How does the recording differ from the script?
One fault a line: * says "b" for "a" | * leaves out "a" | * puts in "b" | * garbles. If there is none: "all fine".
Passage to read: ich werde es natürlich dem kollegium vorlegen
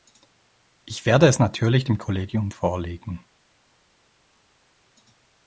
all fine